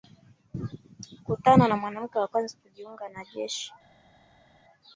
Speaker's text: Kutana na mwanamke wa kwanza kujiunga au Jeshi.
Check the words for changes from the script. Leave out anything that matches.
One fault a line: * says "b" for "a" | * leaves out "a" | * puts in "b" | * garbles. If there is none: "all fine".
* says "na" for "au"